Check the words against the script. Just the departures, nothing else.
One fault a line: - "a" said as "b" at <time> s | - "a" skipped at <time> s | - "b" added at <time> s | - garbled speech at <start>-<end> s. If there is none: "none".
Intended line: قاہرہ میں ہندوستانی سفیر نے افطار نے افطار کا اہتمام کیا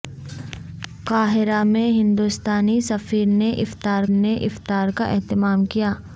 none